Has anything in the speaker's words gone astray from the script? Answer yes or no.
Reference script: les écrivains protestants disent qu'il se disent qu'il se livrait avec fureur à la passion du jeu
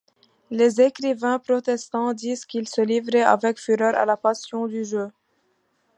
yes